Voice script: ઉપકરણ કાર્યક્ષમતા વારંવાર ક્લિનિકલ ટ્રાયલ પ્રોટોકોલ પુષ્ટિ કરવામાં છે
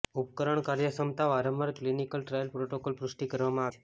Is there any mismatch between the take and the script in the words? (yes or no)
no